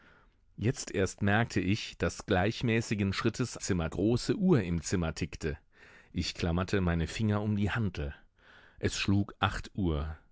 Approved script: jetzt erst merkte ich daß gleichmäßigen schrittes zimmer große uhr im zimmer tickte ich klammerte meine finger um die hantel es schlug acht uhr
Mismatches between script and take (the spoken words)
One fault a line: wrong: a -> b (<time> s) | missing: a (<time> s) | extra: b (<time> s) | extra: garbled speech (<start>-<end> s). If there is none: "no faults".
no faults